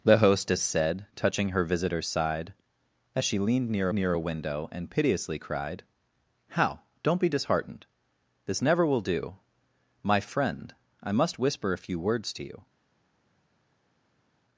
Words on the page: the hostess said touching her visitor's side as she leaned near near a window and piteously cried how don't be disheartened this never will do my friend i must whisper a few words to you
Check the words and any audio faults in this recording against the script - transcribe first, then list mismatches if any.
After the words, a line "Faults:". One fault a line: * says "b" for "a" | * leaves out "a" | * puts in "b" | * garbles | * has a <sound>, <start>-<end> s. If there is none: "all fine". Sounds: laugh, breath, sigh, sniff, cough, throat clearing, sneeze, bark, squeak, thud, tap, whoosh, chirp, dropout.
the hostess said touching her visitor's side as she leaned near near a window and piteously cried how don't be disheartened this never will do my friend i must whisper a few words to you
Faults:
all fine